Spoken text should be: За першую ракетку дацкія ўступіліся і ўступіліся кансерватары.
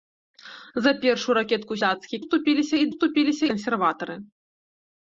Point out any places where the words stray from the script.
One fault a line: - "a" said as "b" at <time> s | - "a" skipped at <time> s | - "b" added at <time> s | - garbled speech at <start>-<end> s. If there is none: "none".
none